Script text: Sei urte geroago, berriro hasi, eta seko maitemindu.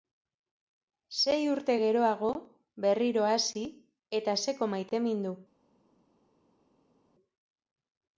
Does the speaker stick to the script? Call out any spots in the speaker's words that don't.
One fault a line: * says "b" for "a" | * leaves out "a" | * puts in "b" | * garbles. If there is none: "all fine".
all fine